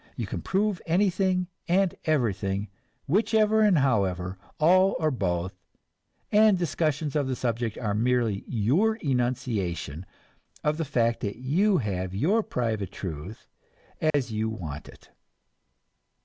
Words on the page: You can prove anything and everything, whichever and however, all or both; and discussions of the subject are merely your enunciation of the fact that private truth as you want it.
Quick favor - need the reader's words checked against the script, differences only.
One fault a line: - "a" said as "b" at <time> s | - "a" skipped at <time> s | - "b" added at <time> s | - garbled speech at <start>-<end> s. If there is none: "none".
- "you have your" added at 11.4 s